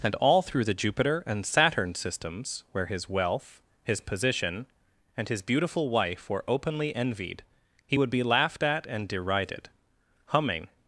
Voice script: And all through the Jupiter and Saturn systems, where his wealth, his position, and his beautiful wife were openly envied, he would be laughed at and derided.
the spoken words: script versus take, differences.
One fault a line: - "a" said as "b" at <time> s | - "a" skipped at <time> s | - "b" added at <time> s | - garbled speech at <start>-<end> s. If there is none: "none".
- "Humming" added at 10.3 s